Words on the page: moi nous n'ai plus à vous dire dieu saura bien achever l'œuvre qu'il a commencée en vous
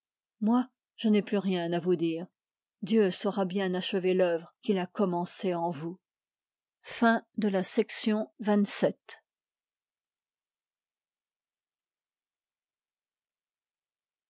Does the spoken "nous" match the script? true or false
false